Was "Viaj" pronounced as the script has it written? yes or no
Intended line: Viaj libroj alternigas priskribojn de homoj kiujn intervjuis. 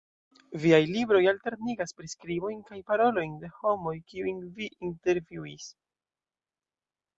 yes